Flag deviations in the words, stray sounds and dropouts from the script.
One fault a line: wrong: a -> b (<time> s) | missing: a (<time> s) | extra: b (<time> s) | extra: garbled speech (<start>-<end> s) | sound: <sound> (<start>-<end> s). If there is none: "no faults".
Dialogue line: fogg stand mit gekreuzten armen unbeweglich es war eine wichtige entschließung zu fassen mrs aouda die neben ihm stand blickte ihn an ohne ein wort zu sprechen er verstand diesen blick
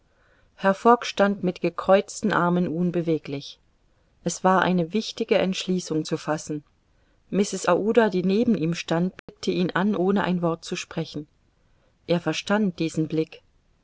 sound: dropout (9.2-9.3 s)